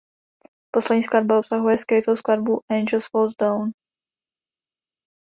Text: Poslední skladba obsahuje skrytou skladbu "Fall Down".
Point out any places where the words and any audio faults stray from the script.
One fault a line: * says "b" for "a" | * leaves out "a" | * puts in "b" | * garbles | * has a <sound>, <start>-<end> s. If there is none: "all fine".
* puts in "Angels"